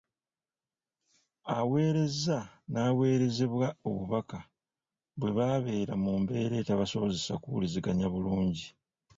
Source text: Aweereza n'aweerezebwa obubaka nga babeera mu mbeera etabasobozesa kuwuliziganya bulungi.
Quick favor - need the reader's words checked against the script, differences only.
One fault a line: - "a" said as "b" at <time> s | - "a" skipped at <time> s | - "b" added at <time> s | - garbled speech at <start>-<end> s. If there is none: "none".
- "nga" said as "bwe" at 5.2 s